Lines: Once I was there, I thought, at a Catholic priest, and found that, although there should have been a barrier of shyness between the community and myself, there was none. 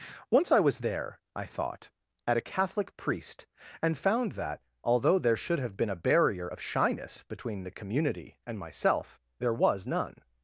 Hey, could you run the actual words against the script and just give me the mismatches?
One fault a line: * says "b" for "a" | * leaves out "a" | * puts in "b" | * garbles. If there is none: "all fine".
all fine